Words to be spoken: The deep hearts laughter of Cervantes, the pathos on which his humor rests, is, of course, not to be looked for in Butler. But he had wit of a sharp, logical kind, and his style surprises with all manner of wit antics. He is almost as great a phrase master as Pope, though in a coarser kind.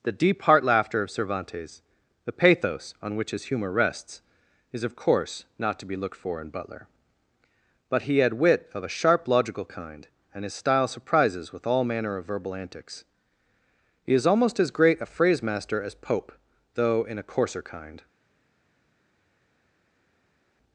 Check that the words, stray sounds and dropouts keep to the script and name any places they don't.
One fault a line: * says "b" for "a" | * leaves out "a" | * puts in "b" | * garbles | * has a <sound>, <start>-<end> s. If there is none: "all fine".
* says "heart" for "hearts"
* says "verbal" for "wit"